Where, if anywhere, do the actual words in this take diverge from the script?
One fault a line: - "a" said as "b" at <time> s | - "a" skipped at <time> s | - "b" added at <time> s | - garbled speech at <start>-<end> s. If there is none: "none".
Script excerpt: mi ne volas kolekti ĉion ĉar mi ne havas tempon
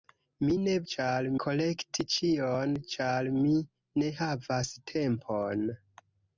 - "volas" said as "ĉar" at 0.9 s